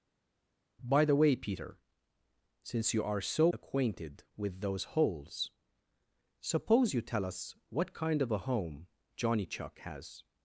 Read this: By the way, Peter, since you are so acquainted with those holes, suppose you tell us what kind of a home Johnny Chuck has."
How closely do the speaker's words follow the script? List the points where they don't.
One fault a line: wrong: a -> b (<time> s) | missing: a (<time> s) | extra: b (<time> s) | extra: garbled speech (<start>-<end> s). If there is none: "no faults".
no faults